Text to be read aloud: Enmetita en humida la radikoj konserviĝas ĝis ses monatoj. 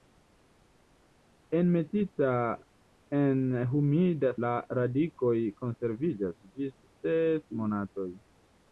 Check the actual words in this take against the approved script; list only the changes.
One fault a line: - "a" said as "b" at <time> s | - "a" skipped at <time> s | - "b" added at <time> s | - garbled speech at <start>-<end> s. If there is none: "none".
none